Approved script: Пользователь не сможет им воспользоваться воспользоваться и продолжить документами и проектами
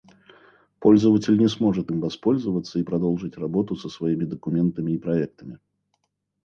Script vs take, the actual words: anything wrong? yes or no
yes